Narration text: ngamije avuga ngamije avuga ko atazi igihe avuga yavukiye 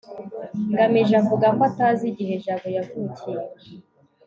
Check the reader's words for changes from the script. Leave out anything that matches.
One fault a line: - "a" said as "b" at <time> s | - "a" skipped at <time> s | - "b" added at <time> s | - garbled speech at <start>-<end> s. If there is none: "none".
- "ngamije avuga" skipped at 1.5 s
- "avuga" said as "jabo" at 2.4 s